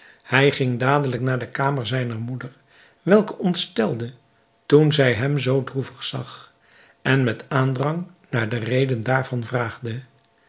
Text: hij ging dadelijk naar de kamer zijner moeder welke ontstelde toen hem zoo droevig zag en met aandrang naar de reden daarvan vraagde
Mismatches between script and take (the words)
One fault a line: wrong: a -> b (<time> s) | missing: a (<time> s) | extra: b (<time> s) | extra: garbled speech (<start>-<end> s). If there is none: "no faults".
extra: zij (4.9 s)